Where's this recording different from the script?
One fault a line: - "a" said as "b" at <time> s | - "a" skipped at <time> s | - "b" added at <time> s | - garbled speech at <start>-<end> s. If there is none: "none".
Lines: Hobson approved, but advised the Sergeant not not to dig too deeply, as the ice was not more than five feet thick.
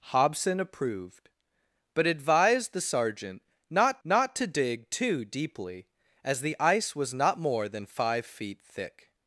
none